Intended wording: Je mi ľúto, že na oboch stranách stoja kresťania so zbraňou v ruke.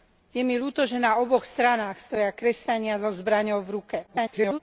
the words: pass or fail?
fail